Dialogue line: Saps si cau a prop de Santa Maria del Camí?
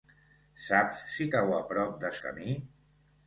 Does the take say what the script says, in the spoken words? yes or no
no